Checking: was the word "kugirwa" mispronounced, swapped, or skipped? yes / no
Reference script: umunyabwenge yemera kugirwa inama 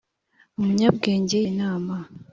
yes